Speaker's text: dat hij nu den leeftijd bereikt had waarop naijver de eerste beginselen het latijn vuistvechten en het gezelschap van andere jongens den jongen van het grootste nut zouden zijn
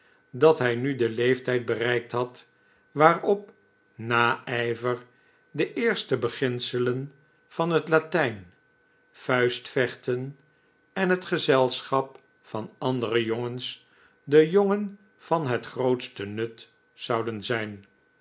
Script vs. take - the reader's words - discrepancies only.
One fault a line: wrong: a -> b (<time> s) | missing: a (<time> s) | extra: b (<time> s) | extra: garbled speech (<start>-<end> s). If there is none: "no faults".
extra: van (7.5 s)